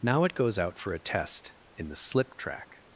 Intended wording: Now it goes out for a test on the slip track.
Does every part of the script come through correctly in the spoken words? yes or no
no